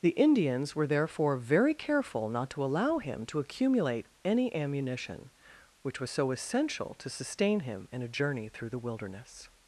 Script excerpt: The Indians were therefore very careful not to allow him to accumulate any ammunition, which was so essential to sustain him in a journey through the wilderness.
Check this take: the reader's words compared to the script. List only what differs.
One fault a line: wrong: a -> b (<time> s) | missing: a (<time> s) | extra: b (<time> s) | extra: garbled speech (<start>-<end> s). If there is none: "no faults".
no faults